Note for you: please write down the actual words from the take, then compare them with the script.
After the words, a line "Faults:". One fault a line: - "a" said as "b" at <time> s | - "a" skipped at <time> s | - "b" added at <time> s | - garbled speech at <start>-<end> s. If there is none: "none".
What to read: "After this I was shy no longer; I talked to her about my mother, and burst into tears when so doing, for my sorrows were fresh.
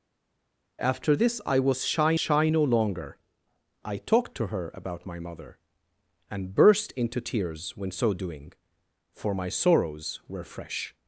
"After this I was shy shy no longer; I talked to her about my mother, and burst into tears when so doing, for my sorrows were fresh.
Faults:
- "shy" added at 2.1 s